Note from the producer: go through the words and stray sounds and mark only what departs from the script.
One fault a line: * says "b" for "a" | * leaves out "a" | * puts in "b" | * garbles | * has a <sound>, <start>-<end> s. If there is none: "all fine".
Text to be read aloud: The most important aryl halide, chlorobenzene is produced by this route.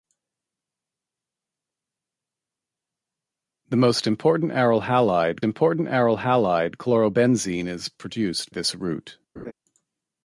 * puts in "important aryl halide"
* leaves out "by"
* has a laugh, 9.4-9.5 s